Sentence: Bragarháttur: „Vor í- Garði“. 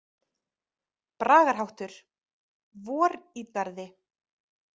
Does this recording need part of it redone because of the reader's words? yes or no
no